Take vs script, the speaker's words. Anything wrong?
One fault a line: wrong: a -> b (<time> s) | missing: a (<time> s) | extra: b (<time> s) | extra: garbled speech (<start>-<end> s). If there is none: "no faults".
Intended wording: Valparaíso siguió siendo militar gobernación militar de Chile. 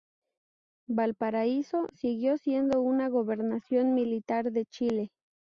wrong: militar -> una (2.8 s)